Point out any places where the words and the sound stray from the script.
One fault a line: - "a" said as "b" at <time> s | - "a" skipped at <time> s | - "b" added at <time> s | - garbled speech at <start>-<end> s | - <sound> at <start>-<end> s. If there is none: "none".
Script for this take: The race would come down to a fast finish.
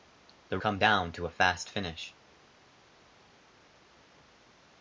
- "race would" skipped at 0.6 s